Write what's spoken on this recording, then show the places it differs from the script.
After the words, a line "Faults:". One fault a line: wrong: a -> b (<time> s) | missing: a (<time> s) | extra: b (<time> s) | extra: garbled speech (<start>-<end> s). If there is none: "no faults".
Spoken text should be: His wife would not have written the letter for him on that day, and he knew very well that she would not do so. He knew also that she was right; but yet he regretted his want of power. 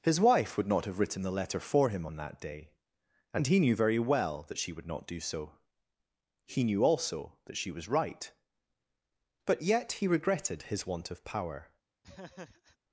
His wife would not have written the letter for him on that day, and he knew very well that she would not do so. He knew also that she was right; but yet he regretted his want of power.
Faults:
no faults